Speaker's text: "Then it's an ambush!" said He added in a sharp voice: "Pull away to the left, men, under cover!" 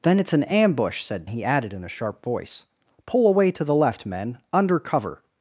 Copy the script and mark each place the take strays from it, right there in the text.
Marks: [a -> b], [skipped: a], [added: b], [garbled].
"Then it's an ambush!" said He added in a sharp voice: "Pull away to the left, men, under cover!"